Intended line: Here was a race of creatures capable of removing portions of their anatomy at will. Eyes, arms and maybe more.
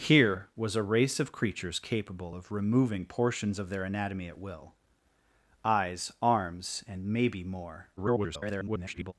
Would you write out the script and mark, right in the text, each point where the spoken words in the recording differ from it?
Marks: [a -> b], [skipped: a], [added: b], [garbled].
Here was a race of creatures capable of removing portions of their anatomy at will. Eyes, arms and maybe more. [garbled]